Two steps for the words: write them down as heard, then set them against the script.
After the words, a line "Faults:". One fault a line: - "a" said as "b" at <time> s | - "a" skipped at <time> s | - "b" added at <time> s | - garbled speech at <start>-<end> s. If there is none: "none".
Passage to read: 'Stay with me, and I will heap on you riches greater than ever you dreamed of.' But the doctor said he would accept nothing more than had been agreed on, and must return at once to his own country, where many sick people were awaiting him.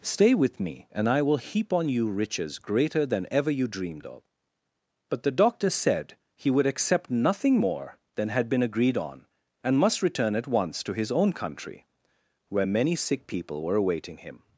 'Stay with me, and I will heap on you riches greater than ever you dreamed of.' But the doctor said he would accept nothing more than had been agreed on, and must return at once to his own country, where many sick people were awaiting him.
Faults:
none